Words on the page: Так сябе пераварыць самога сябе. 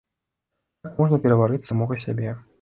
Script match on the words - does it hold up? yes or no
no